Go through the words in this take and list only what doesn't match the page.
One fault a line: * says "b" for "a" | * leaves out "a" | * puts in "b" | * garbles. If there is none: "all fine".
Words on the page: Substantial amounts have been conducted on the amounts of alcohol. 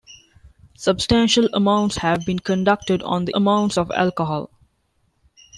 all fine